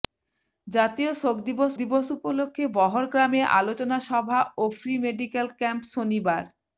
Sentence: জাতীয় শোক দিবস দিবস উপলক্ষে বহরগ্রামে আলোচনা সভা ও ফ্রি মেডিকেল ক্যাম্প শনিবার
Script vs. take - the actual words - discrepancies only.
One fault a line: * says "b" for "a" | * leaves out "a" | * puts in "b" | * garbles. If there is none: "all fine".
all fine